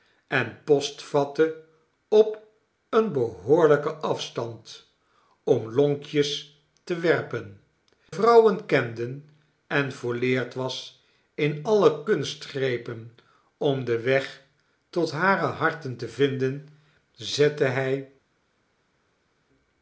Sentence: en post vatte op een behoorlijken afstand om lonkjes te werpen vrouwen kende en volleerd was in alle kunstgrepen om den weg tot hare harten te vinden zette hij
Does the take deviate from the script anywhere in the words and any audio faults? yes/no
no